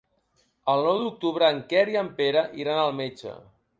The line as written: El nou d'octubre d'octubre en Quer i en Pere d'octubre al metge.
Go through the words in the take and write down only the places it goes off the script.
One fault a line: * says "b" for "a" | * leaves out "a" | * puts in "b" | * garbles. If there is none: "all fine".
* leaves out "d'octubre"
* says "iran" for "d'octubre"